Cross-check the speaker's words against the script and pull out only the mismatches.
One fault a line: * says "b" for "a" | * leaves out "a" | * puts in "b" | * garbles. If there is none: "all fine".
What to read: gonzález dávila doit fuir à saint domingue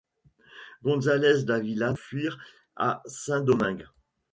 * leaves out "doit"